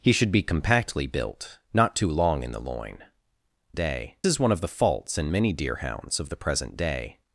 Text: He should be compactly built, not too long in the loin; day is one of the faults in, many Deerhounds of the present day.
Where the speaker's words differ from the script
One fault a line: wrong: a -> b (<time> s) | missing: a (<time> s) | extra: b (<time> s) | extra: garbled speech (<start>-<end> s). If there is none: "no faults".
no faults